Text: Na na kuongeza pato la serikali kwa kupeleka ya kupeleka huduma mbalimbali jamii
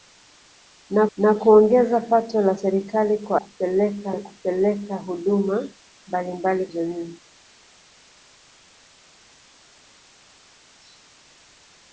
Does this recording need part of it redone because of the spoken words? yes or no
no